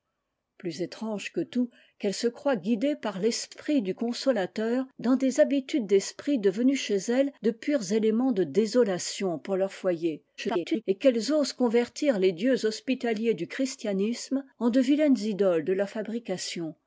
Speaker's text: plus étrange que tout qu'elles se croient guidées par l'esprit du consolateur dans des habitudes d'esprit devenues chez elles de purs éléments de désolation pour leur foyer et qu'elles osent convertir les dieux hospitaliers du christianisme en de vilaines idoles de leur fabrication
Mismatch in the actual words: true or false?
true